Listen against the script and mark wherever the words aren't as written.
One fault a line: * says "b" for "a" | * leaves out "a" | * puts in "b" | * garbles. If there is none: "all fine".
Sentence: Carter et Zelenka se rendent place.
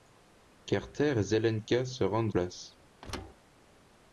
all fine